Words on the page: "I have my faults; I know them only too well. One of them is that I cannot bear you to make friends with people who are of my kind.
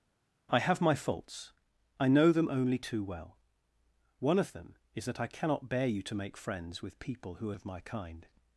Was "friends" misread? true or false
false